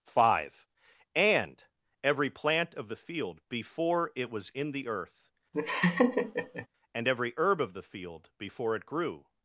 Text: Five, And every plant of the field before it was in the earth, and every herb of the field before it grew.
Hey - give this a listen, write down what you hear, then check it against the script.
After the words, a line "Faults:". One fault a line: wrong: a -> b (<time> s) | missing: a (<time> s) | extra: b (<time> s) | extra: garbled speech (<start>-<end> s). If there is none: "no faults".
Five, And every plant of the field before it was in the earth, and every herb of the field before it grew.
Faults:
no faults